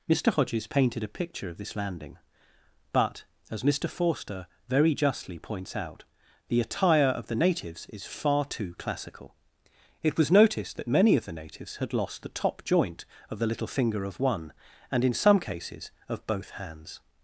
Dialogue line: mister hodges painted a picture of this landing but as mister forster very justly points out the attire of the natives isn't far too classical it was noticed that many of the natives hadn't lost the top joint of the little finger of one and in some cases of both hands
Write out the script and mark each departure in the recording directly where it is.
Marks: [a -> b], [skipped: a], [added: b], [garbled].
mister hodges painted a picture of this landing but as mister forster very justly points out the attire of the natives [isn't -> is] far too classical it was noticed that many of the natives [hadn't -> had] lost the top joint of the little finger of one and in some cases of both hands